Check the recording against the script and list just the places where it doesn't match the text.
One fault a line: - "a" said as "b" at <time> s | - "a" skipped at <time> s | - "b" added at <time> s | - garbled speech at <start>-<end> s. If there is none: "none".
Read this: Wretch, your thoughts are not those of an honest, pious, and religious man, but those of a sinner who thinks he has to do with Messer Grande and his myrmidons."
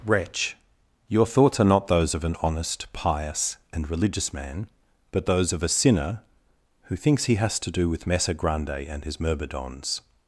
none